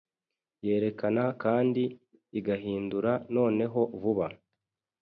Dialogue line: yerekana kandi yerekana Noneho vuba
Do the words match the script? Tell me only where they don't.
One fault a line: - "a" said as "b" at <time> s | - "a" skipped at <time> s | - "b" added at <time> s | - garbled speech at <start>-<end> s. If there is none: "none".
- "yerekana" said as "igahindura" at 2.4 s